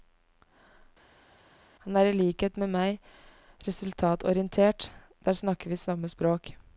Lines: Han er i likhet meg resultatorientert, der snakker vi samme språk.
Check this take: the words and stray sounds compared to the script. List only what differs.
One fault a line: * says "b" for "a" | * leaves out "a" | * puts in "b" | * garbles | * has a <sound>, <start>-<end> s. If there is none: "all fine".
* puts in "med"